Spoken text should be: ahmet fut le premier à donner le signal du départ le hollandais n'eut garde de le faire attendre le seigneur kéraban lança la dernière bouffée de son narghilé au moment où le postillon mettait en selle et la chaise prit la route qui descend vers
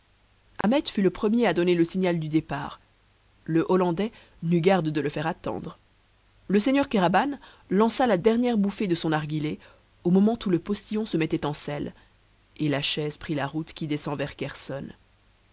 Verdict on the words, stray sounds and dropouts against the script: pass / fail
fail